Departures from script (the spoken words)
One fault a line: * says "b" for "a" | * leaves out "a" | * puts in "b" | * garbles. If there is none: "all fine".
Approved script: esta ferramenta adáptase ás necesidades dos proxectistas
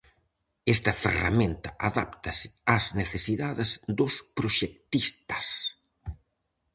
all fine